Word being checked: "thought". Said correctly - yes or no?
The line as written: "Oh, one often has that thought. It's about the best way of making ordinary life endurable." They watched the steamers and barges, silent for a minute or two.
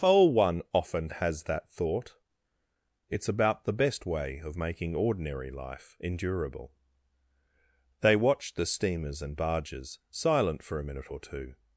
yes